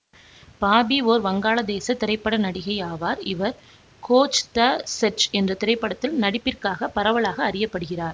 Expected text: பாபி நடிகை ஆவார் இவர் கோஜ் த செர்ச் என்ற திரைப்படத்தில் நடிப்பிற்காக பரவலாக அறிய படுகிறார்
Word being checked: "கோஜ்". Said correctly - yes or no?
yes